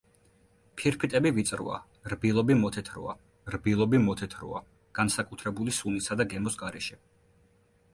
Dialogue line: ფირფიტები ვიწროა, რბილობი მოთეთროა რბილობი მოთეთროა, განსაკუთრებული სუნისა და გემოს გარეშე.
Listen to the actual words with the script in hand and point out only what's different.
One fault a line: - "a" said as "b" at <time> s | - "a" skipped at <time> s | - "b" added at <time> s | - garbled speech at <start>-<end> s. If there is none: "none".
none